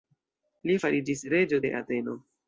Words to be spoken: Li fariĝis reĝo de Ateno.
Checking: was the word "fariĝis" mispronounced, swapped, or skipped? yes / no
no